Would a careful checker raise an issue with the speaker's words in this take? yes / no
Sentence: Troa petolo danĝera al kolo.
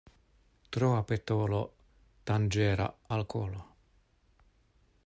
no